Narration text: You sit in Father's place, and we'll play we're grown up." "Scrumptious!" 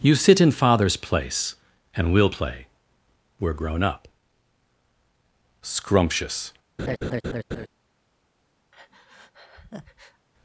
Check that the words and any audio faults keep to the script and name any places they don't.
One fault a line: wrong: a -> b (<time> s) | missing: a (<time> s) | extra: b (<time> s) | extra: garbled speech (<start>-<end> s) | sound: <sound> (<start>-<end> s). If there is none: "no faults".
sound: laugh (6.8-7.7 s)
sound: breath (8.7-10.3 s)